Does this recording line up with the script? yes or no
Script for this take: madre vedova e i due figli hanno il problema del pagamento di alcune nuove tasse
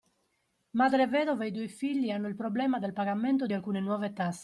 yes